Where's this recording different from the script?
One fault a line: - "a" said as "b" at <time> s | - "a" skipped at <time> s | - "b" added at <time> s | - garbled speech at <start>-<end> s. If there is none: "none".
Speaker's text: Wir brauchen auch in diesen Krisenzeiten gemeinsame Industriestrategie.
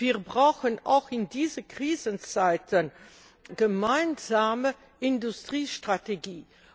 none